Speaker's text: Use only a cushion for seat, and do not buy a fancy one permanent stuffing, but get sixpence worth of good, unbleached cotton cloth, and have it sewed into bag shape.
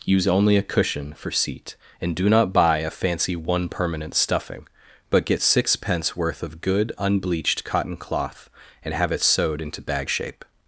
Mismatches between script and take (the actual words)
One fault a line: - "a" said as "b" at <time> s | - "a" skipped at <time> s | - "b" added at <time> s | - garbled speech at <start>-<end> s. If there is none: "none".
none